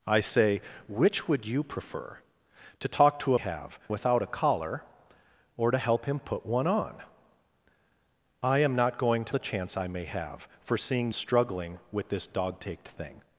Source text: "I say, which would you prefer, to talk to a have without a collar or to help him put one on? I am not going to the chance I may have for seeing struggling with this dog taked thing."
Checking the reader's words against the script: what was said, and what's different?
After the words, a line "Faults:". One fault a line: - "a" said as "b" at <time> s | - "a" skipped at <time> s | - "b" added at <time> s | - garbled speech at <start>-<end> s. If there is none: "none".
"I say, which would you prefer, to talk to a have without a collar or to help him put one on? I am not going to the chance I may have for seeing struggling with this dog taked thing."
Faults:
none